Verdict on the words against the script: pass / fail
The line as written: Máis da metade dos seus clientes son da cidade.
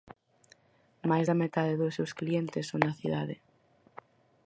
pass